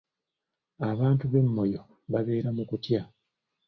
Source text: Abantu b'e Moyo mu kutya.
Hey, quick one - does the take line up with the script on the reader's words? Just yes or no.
no